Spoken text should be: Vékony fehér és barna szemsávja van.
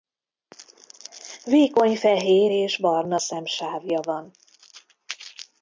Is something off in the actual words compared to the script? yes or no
no